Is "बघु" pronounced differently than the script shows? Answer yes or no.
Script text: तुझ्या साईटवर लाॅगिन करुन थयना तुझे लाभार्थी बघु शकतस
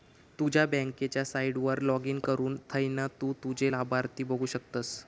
no